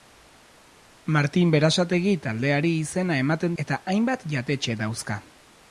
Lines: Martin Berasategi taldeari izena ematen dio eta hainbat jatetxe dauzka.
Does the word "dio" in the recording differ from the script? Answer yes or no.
yes